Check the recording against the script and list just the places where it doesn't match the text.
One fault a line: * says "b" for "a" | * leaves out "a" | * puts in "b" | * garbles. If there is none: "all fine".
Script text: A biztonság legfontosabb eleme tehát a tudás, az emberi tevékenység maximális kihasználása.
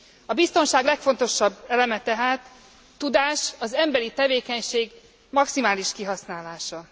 * leaves out "a"